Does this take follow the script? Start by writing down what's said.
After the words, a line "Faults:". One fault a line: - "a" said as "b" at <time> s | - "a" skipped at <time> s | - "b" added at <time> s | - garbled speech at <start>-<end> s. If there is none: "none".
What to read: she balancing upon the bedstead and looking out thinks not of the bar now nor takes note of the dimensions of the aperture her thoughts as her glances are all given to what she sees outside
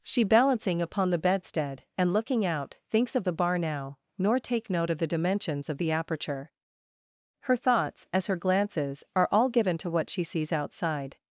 she balancing upon the bedstead and looking out thinks of the bar now nor take note of the dimensions of the aperture her thoughts as her glances are all given to what she sees outside
Faults:
- "not" skipped at 3.1 s
- "takes" said as "take" at 4.4 s